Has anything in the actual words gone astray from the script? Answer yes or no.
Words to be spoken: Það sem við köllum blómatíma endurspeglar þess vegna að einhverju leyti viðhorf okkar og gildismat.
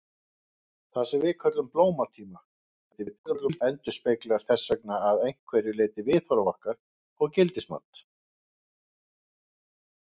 yes